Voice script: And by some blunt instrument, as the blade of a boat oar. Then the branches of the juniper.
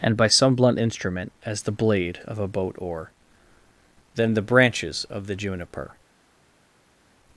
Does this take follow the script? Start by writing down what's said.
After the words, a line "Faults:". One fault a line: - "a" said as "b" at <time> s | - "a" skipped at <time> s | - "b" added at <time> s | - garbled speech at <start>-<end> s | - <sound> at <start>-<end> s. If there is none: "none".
And by some blunt instrument, as the blade of a boat oar. Then the branches of the juniper.
Faults:
none